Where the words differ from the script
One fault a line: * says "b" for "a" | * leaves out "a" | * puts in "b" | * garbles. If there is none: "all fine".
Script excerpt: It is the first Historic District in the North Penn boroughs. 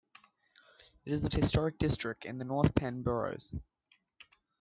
* leaves out "first"